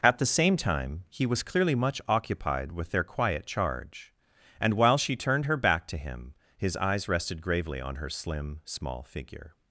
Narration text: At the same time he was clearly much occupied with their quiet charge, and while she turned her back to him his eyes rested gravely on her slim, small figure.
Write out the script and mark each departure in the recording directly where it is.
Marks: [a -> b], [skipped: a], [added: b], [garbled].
At the same time he was clearly much occupied with their quiet charge, and while she turned her back to him his eyes rested gravely on her slim, small figure.